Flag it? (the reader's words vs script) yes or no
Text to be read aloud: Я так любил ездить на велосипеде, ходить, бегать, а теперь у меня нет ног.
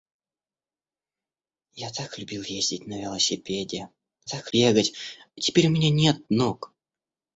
yes